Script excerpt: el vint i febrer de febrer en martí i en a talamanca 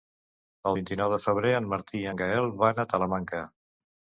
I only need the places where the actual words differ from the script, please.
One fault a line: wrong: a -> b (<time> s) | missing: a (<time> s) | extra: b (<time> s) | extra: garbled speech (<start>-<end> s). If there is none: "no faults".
wrong: febrer -> nou (1.0 s)
extra: gaël van (2.2 s)